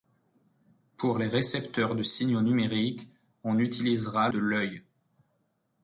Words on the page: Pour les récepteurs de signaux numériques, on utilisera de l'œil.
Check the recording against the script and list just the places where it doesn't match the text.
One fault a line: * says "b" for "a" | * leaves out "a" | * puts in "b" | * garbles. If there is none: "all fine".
all fine